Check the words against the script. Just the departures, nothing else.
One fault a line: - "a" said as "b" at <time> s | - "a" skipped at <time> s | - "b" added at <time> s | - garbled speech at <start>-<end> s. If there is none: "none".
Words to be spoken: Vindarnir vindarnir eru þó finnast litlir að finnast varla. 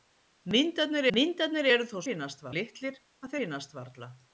none